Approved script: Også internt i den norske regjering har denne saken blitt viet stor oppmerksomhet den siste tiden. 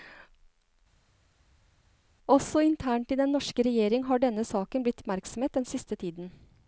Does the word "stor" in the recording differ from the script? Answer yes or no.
yes